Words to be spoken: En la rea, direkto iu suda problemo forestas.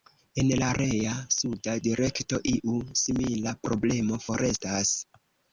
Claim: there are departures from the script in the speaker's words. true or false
true